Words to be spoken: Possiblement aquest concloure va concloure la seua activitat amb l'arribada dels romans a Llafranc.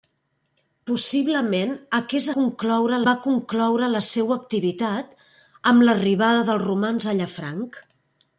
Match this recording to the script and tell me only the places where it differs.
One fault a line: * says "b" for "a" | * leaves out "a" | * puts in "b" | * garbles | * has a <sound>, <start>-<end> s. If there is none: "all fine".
all fine